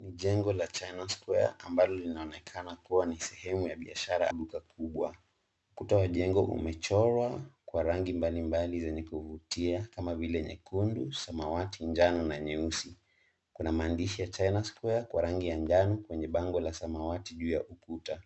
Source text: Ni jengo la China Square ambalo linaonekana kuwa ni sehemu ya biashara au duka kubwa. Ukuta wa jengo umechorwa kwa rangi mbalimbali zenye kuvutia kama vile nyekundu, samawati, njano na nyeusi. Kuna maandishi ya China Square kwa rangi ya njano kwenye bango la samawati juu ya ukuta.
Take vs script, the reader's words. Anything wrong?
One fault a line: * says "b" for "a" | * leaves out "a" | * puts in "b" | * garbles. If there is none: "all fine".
* leaves out "au"